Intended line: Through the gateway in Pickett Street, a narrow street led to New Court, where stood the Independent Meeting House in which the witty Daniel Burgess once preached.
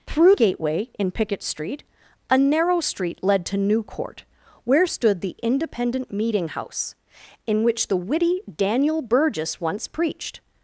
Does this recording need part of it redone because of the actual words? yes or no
yes